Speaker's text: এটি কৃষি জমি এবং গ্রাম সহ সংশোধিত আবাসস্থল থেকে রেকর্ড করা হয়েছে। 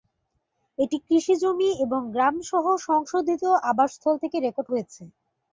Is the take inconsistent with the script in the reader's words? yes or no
yes